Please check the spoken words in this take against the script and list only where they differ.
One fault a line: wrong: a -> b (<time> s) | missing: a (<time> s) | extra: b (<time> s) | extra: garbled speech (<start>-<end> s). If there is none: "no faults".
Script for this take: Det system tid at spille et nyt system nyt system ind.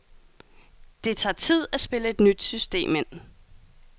wrong: system -> tager (1.2 s)
missing: nyt system (3.0 s)